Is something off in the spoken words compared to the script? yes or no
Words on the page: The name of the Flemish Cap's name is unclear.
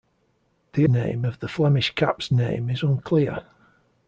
no